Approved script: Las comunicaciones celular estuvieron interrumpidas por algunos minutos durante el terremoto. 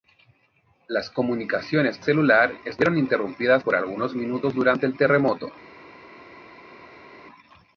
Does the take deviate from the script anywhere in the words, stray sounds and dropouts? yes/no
no